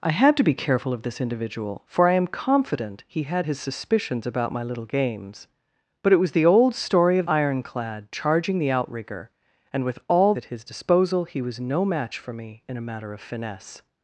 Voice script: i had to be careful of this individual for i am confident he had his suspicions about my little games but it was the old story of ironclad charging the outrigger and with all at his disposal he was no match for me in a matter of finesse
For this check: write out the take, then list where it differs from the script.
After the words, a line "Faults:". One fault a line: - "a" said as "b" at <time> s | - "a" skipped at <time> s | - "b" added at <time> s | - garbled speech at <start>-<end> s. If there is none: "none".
i had to be careful of this individual for i am confident he had his suspicions about my little games but it was the old story of ironclad charging the outrigger and with all at his disposal he was no match for me in a matter of finesse
Faults:
none